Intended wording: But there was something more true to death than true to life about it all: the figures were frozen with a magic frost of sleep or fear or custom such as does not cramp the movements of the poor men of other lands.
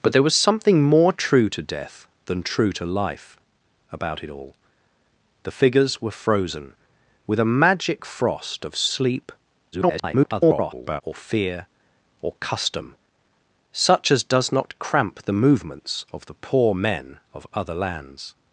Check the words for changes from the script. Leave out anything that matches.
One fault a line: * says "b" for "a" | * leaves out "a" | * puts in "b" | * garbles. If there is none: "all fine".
* garbles